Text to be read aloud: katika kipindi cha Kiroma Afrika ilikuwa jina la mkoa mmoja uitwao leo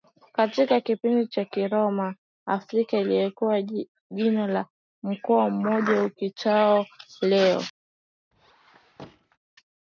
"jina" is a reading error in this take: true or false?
false